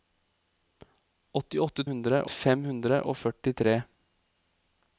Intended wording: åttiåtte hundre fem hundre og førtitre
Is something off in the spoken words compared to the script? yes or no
no